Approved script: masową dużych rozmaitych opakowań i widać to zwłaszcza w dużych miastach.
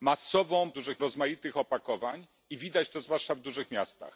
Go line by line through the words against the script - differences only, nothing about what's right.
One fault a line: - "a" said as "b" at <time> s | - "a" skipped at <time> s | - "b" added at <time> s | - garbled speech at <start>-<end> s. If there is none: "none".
none